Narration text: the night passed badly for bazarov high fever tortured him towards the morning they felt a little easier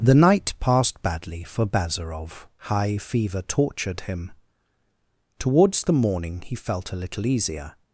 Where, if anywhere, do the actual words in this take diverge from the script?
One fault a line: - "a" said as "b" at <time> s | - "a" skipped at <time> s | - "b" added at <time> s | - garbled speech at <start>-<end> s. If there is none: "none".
- "they" said as "he" at 6.4 s